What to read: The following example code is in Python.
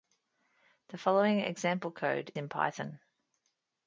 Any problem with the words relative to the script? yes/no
yes